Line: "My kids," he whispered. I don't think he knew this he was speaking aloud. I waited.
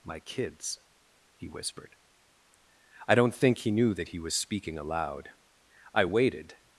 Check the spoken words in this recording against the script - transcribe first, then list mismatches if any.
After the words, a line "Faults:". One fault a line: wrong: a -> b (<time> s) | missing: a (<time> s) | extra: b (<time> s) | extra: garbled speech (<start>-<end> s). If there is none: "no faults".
"My kids," he whispered. I don't think he knew that he was speaking aloud. I waited.
Faults:
wrong: this -> that (3.9 s)